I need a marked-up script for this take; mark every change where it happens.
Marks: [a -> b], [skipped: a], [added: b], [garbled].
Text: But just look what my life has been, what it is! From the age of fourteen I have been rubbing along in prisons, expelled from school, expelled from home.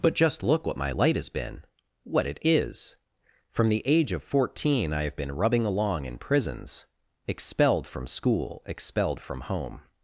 But just look what my [life -> light] has been, what it is! From the age of fourteen I have been rubbing along in prisons, expelled from school, expelled from home.